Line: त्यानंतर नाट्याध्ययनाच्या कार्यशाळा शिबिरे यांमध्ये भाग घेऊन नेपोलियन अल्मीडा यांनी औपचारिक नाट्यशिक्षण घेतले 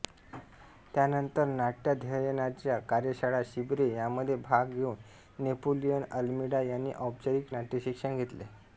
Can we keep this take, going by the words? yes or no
yes